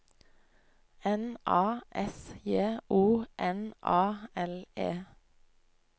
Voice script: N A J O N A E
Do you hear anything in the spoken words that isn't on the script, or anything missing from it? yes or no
yes